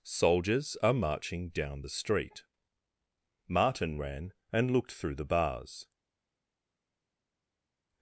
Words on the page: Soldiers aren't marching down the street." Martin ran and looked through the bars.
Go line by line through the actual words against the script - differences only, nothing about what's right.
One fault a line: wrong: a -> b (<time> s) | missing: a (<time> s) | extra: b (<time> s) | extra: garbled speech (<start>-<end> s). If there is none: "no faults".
wrong: aren't -> are (0.8 s)